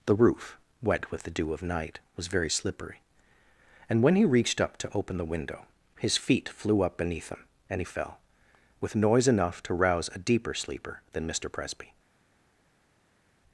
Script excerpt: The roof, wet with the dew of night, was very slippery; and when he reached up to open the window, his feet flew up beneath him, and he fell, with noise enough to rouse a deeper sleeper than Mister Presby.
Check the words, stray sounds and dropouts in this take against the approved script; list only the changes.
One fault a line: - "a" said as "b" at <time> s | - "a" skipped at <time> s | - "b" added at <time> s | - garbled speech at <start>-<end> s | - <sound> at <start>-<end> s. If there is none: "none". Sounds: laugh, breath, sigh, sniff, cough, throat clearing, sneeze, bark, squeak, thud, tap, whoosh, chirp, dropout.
none